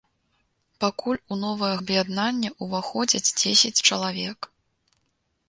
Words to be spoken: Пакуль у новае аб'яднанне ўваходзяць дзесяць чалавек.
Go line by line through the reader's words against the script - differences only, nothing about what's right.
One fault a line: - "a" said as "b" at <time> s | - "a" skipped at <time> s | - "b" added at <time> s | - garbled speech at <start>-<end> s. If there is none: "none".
none